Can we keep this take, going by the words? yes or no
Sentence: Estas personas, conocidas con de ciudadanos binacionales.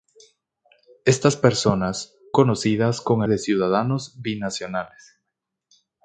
yes